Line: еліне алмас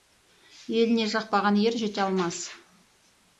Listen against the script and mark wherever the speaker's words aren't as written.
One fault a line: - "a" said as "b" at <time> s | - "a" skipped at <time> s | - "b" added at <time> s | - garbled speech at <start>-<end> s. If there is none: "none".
- "жақпаған ер жете" added at 1.1 s